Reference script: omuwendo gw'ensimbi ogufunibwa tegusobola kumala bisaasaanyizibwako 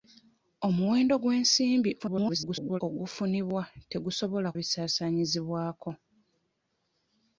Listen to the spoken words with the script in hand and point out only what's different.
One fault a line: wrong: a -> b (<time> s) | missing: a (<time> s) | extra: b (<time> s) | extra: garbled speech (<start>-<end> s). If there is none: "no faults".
extra: garbled speech (2.0-2.8 s)
missing: kumala (4.5 s)